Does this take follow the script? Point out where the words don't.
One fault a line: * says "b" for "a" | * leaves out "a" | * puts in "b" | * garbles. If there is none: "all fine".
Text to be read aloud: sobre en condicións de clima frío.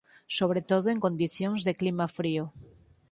* puts in "todo"